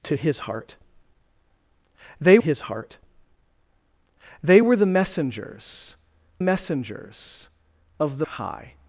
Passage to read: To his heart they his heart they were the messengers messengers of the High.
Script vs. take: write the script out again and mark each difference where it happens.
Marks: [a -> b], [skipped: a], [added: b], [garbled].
To his heart they his heart they were the messengers messengers of the High.